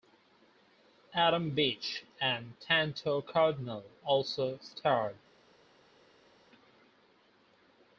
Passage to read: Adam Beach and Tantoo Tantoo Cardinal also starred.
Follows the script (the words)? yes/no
no